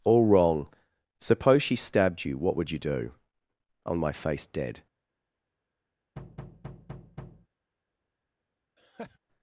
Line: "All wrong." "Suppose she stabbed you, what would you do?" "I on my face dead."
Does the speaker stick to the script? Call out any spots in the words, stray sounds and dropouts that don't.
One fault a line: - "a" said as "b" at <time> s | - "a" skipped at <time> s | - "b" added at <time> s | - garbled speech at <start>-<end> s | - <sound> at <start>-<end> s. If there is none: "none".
- thud at 6.2-7.5 s
- laugh at 8.8-9.2 s